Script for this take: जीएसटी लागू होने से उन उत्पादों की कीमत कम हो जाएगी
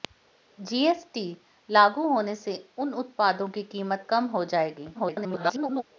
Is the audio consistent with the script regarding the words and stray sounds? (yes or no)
no